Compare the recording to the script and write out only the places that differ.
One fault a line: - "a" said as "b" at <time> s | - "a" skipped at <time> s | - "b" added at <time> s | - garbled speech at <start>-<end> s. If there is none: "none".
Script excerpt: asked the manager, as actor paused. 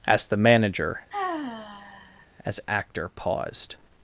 none